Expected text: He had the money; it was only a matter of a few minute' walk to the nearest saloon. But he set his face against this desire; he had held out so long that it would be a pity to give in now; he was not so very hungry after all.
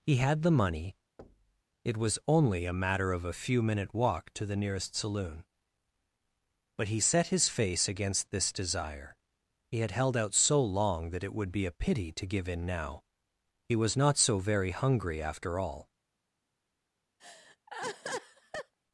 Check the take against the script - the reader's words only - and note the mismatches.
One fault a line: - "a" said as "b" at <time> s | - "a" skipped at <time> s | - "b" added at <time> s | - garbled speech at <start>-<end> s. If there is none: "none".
none